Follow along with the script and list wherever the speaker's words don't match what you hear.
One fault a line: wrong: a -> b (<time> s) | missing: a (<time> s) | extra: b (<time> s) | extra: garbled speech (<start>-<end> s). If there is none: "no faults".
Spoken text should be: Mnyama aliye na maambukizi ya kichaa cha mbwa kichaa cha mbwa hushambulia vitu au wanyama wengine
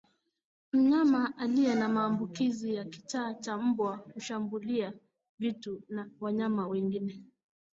missing: kichaa cha mbwa (4.0 s)
wrong: au -> na (5.9 s)